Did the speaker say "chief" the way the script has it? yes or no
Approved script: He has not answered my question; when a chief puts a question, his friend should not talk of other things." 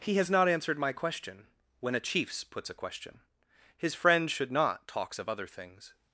no